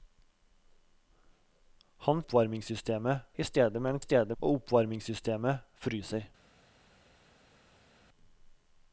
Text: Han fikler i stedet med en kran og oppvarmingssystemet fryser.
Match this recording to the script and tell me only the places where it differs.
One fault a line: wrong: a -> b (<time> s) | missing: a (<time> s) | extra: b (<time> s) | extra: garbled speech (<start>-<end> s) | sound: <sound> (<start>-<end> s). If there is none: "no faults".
wrong: fikler -> oppvarmingssystemet (2.2 s)
wrong: kran -> stedet (4.0 s)